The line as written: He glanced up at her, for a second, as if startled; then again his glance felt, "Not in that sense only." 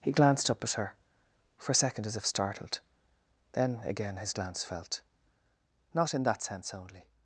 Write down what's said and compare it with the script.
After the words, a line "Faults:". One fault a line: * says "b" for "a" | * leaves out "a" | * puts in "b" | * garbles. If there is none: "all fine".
He glanced up at her, for a second, as if startled; then again his glance felt, "Not in that sense only."
Faults:
all fine